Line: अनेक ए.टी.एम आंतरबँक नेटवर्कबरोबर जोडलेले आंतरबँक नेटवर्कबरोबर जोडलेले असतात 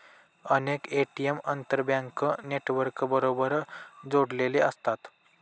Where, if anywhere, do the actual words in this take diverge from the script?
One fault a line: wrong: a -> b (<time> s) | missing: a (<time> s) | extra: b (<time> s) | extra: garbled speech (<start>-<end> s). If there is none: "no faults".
missing: आंतरबँक नेटवर्कबरोबर जोडलेले (4.6 s)